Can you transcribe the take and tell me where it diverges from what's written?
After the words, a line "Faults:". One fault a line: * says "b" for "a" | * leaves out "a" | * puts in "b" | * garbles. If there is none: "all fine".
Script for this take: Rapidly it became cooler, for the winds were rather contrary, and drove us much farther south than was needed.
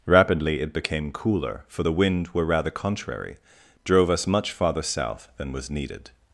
Rapidly it became cooler, for the wind were rather contrary, drove us much farther south than was needed.
Faults:
* says "wind" for "winds"
* leaves out "and"